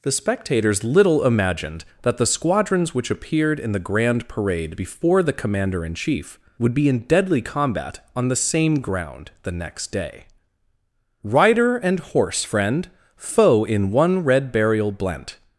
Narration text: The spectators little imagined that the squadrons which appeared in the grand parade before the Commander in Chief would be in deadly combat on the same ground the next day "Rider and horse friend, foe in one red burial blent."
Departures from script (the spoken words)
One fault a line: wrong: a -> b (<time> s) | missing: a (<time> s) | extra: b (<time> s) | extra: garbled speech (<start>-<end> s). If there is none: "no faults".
no faults